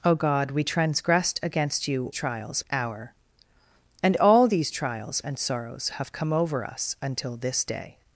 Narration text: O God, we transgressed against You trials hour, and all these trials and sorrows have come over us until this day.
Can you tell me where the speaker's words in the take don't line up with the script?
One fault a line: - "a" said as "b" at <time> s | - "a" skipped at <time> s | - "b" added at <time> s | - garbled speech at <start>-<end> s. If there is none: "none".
none